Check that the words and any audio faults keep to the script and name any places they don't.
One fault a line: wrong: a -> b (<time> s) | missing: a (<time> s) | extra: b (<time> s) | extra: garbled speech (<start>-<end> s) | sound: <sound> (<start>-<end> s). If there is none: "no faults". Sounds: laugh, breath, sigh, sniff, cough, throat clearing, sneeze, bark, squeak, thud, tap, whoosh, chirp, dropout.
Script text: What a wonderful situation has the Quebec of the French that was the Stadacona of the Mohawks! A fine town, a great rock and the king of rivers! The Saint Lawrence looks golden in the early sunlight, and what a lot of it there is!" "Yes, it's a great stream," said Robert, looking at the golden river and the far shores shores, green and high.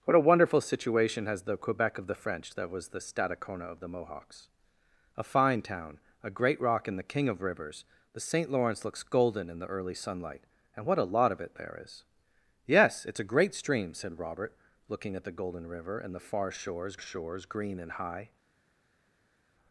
no faults